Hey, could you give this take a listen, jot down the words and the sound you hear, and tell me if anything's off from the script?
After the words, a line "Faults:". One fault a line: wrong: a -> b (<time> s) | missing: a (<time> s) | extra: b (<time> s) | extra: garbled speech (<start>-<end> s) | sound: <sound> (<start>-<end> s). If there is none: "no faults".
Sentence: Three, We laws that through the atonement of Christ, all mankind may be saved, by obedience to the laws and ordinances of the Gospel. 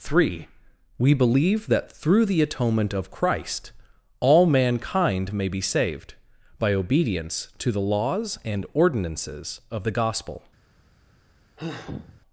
Three, We believe that through the atonement of Christ, all mankind may be saved, by obedience to the laws and ordinances of the Gospel.
Faults:
wrong: laws -> believe (1.1 s)
sound: sigh (11.6-12.2 s)